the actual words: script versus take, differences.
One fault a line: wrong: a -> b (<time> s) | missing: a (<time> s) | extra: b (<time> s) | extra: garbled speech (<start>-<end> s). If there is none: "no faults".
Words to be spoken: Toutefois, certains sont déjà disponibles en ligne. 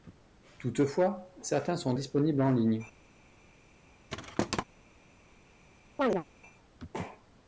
missing: déjà (1.9 s)